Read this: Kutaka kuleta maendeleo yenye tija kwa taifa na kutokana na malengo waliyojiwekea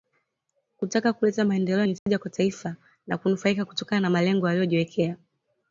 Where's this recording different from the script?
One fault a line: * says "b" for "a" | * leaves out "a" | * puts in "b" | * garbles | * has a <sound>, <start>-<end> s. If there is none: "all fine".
* has a dropout, 2.0-2.1 s
* puts in "kunufaika"